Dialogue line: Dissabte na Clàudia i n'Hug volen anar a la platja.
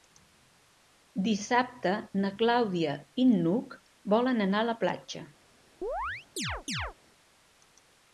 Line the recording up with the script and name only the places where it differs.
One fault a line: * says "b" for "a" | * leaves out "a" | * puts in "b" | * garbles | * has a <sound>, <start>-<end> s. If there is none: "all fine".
* has a chirp, 5.8-6.9 s